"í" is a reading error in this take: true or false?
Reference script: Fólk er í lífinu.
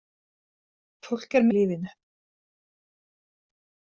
false